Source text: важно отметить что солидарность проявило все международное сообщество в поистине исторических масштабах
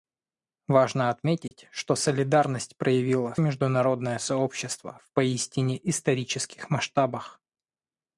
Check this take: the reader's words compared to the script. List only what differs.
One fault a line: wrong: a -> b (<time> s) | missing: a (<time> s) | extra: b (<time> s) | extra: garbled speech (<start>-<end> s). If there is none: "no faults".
missing: все (3.4 s)